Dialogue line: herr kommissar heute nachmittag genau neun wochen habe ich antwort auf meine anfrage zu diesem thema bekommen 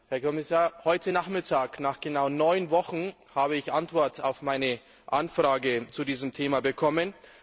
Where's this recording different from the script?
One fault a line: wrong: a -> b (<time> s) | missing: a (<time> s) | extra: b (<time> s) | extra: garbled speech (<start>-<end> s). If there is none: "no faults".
extra: nach (1.8 s)